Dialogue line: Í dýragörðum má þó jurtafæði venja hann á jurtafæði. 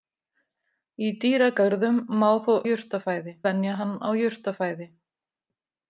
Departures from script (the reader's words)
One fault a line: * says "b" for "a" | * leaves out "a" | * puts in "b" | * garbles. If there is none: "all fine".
all fine